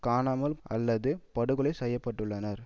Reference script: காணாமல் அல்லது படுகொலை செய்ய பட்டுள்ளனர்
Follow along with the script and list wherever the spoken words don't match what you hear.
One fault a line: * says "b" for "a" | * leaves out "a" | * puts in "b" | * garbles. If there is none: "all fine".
all fine